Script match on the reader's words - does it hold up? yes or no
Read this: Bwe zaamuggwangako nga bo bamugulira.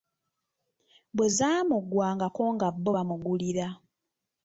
yes